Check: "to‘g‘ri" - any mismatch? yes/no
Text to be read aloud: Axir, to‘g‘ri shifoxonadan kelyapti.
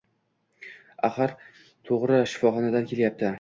no